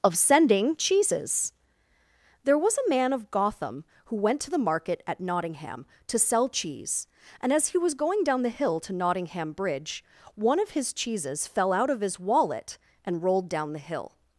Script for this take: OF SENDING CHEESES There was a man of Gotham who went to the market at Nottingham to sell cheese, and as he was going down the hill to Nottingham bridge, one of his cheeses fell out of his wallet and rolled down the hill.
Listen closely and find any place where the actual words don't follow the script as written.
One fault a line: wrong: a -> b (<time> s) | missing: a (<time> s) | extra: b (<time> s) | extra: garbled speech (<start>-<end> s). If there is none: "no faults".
no faults